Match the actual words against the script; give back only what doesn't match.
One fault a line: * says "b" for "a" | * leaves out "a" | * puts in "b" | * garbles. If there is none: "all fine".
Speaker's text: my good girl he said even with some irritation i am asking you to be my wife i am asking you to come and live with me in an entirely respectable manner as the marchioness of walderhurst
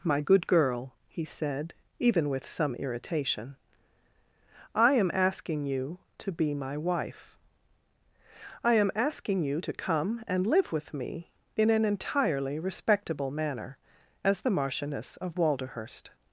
all fine